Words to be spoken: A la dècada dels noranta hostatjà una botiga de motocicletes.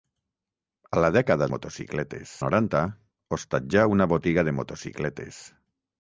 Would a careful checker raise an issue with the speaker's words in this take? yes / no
yes